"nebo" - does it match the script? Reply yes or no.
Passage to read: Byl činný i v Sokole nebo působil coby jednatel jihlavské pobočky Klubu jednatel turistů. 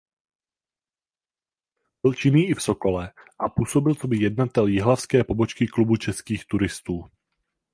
no